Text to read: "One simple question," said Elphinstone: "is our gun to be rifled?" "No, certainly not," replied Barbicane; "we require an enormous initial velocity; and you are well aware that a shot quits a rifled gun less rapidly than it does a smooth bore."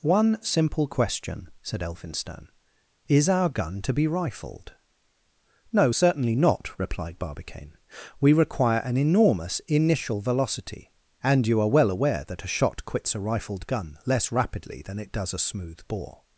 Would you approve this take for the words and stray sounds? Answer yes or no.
yes